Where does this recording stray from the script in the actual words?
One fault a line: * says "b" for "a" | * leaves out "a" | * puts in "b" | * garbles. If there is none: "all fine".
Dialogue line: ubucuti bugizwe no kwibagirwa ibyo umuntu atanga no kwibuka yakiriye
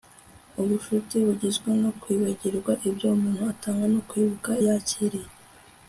all fine